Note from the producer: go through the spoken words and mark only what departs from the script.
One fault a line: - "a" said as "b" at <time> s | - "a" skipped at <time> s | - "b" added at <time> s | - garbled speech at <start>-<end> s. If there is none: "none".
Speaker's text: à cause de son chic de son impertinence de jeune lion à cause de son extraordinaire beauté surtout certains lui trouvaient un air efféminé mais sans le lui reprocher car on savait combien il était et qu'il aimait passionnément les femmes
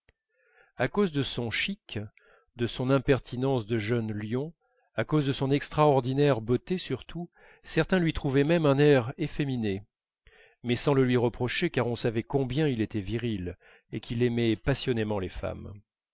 - "même" added at 8.4 s
- "viril" added at 13.0 s